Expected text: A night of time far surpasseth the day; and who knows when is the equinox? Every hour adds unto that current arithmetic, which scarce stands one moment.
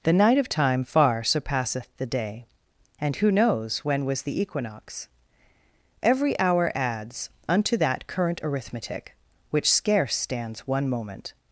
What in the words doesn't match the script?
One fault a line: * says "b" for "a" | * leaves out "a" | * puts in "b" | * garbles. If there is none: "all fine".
* says "The" for "A"
* says "was" for "is"